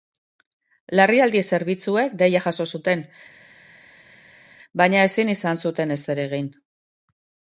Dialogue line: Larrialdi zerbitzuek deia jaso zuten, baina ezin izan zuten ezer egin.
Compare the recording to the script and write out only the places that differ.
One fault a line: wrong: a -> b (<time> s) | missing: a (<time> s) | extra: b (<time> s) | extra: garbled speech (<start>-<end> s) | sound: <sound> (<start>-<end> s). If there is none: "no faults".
no faults